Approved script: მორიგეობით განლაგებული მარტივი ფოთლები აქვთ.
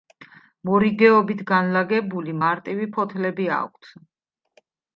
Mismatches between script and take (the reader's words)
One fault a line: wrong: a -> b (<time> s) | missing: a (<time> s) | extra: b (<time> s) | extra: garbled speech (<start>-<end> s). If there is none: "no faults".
no faults